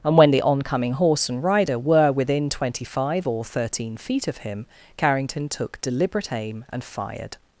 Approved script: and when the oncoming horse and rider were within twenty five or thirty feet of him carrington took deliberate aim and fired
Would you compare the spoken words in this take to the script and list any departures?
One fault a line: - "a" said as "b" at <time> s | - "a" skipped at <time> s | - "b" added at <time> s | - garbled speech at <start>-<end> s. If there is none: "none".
- "thirty" said as "thirteen" at 3.5 s